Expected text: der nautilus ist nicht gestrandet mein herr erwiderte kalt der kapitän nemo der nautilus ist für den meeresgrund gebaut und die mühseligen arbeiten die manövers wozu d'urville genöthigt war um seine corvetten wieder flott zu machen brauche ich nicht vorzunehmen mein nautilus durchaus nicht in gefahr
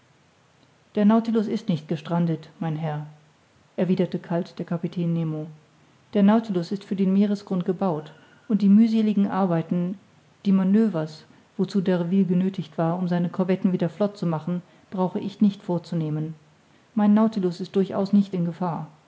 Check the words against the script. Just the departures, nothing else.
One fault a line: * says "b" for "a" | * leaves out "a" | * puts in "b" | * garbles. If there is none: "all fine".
* puts in "ist"